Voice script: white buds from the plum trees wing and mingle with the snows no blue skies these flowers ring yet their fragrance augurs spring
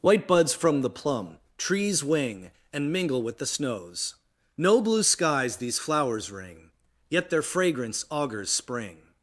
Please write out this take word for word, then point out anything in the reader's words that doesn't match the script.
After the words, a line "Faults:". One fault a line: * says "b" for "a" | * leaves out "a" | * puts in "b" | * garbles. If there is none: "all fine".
white buds from the plum trees wing and mingle with the snows no blue skies these flowers ring yet their fragrance augurs spring
Faults:
all fine